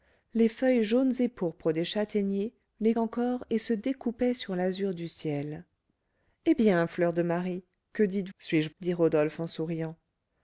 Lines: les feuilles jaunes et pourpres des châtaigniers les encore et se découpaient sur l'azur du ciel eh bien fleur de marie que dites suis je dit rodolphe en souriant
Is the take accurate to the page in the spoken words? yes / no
yes